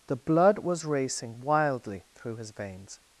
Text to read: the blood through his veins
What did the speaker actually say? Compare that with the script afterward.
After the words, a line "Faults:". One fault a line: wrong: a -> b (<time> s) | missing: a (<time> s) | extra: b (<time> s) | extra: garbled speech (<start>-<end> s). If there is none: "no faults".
the blood was racing wildly through his veins
Faults:
extra: was racing wildly (0.6 s)